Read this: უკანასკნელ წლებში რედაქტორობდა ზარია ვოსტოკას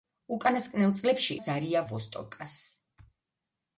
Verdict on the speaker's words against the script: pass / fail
fail